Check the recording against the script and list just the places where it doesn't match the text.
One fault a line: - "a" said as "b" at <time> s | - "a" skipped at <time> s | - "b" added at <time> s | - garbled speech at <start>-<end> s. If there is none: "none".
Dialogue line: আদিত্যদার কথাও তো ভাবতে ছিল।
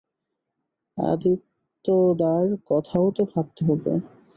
- "ছিল" said as "হবে" at 3.7 s